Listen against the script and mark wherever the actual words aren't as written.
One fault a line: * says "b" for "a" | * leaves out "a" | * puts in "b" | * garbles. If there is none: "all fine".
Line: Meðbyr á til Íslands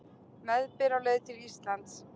* puts in "leið"